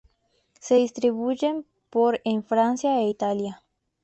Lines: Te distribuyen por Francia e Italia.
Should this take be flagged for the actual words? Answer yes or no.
yes